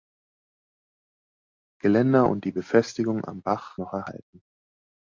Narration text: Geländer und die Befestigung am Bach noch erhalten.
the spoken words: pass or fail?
pass